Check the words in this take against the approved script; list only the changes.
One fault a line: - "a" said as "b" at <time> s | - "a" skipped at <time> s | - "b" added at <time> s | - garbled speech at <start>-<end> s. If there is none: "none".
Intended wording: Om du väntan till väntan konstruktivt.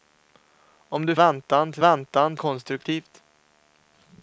none